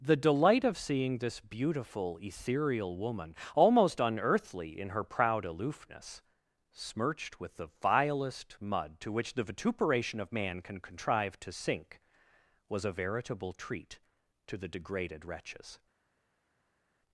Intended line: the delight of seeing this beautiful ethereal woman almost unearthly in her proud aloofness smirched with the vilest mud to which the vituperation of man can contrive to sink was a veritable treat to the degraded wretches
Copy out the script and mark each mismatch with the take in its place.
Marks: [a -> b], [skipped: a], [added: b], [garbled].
the delight of seeing this beautiful ethereal woman almost unearthly in her proud aloofness smirched with the vilest mud to which the vituperation of man can contrive to sink was a veritable treat to the degraded wretches